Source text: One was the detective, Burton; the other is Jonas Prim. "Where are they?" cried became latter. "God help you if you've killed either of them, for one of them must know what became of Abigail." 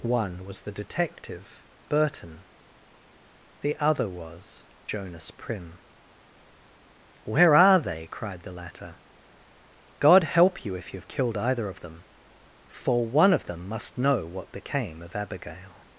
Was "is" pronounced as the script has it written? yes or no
no